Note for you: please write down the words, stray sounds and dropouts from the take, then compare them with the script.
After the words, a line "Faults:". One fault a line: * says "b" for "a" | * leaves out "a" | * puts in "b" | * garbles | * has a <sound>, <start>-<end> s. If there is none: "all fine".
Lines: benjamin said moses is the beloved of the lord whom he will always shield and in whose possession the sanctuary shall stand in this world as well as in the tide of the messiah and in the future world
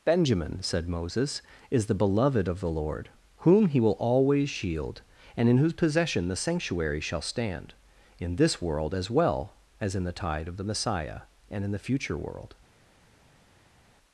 benjamin said moses is the beloved of the lord whom he will always shield and in whose possession the sanctuary shall stand in this world as well as in the tide of the messiah and in the future world
Faults:
all fine